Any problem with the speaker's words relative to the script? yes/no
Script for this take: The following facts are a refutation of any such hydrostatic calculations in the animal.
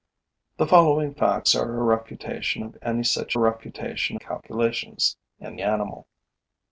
yes